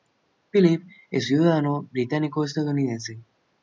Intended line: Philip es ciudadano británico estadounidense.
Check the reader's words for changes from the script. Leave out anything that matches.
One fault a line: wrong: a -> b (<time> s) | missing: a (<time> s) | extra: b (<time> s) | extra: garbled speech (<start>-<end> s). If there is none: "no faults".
no faults